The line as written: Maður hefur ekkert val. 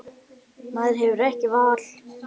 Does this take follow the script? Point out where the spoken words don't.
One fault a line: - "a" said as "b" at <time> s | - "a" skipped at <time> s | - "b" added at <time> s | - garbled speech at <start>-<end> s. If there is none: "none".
none